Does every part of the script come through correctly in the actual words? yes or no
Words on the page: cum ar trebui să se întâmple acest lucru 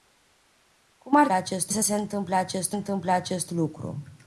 no